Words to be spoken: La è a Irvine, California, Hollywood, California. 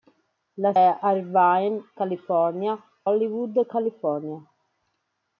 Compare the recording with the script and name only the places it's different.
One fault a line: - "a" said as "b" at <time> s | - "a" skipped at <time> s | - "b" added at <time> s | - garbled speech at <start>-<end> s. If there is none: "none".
none